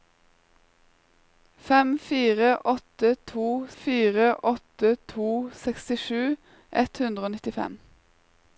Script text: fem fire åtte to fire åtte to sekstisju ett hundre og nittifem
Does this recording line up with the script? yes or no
yes